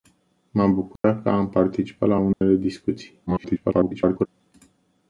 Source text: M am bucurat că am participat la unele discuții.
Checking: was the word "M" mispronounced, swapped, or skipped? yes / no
no